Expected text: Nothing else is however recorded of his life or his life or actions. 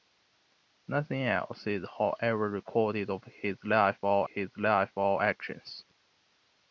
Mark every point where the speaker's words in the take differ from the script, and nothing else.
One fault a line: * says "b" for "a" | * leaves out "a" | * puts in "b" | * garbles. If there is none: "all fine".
all fine